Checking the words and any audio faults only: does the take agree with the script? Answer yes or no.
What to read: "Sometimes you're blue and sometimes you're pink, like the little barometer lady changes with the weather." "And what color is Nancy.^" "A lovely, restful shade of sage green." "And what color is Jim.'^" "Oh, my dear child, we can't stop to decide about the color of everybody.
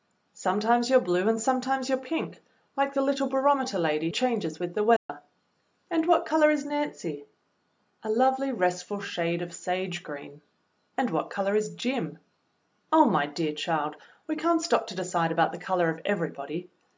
no